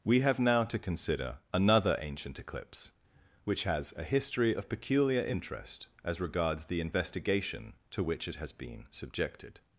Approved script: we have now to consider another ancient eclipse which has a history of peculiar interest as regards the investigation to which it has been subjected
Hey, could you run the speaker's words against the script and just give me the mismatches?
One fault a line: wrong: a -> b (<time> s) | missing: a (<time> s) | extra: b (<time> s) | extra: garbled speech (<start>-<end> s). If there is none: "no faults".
no faults